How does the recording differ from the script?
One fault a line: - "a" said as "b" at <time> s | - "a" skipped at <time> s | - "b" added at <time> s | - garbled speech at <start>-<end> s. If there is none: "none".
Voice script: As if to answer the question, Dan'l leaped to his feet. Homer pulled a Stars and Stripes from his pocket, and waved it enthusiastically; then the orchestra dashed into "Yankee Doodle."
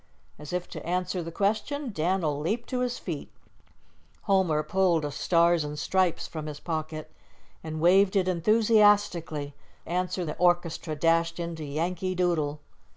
- "then" said as "answer" at 9.9 s